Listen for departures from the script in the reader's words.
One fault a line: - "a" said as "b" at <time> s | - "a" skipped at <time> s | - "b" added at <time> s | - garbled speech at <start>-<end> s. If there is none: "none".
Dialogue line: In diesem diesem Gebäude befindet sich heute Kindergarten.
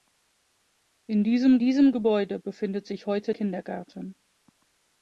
none